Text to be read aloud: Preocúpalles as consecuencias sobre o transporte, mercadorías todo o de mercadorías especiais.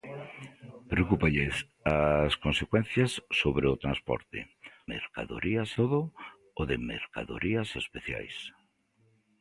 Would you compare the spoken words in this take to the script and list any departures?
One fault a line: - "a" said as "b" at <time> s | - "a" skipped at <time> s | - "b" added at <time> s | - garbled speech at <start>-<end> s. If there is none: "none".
none